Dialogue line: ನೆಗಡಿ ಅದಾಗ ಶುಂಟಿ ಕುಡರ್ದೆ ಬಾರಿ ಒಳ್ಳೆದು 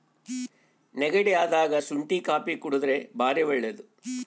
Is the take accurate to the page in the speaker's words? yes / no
no